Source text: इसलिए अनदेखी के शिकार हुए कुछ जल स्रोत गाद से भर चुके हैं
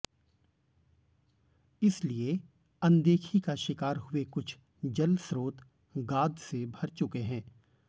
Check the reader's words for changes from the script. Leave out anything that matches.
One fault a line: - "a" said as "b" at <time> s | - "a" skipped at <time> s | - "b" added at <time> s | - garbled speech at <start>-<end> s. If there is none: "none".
- "के" said as "का" at 3.4 s